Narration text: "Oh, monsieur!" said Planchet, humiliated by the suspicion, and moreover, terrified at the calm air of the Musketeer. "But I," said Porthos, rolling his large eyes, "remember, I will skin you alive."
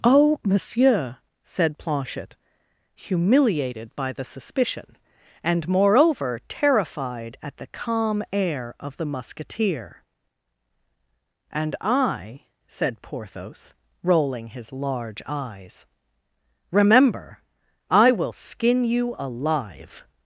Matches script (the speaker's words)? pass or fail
fail